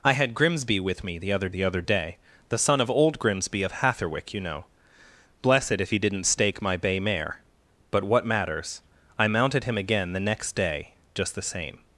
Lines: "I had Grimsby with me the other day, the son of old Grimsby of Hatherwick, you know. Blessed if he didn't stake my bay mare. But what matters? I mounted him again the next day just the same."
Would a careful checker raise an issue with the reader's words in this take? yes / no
yes